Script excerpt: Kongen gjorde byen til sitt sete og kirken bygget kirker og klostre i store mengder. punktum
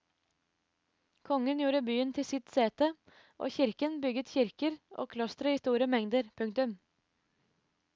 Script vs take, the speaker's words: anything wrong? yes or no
no